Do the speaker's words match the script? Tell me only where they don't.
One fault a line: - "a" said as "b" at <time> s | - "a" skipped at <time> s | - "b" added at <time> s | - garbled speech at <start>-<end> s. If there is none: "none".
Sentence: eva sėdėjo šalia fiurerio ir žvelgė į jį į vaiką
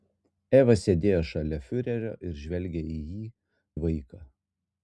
none